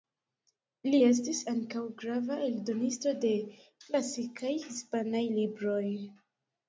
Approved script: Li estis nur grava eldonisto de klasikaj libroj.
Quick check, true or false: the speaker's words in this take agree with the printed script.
false